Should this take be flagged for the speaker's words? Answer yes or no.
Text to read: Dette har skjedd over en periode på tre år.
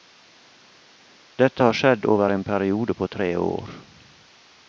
no